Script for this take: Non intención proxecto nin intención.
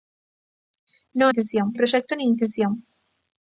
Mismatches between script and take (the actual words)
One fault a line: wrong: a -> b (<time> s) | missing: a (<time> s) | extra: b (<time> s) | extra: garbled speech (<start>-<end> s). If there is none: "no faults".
no faults